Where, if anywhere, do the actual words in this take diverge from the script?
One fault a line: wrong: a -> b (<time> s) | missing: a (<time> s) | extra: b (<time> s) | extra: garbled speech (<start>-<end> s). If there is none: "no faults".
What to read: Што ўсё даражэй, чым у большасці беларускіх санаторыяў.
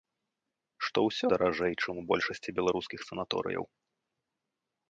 no faults